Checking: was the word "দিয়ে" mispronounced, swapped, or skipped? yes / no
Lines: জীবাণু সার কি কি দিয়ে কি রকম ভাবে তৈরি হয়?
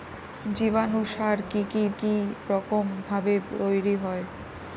yes